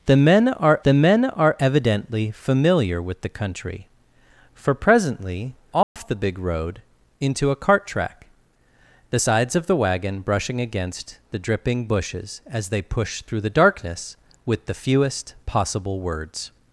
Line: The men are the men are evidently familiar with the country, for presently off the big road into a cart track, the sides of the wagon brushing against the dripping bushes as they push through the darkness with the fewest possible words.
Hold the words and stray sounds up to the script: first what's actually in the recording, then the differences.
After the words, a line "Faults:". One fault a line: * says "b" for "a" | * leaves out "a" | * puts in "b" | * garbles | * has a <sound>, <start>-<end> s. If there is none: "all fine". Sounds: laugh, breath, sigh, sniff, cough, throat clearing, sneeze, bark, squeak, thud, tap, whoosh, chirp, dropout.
The men are the men are evidently familiar with the country, for presently off the big road into a cart track, the sides of the wagon brushing against the dripping bushes as they push through the darkness with the fewest possible words.
Faults:
* has a dropout, 5.8-6.0 s